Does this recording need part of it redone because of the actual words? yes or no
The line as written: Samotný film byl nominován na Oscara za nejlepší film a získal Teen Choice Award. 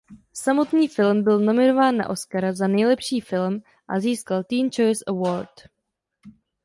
no